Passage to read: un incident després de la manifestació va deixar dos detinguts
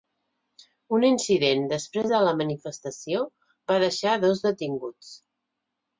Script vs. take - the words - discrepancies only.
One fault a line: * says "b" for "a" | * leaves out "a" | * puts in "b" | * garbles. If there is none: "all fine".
all fine